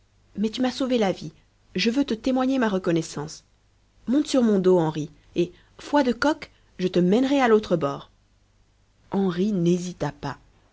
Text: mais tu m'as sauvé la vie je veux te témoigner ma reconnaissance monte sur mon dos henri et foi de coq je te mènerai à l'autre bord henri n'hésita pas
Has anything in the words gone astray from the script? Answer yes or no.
no